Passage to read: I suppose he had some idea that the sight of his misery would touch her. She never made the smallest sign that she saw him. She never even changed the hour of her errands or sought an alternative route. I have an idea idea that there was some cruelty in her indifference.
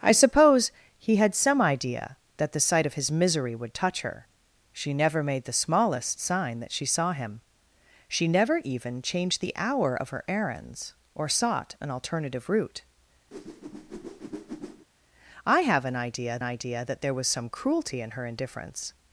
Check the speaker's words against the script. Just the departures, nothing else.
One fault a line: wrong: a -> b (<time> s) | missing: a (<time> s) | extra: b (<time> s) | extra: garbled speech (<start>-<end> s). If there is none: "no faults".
no faults